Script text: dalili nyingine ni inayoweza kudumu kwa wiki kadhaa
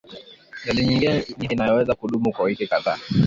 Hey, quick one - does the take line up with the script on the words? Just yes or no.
yes